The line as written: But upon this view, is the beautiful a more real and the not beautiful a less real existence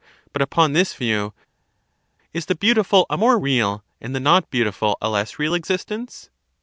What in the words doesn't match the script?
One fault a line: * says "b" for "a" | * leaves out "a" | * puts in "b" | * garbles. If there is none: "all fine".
all fine